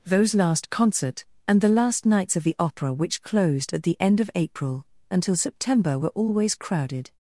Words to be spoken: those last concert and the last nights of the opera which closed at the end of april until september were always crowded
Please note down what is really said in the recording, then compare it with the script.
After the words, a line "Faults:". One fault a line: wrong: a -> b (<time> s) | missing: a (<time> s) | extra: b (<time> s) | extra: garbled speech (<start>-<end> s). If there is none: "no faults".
those last concert and the last nights of the opera which closed at the end of april until september were always crowded
Faults:
no faults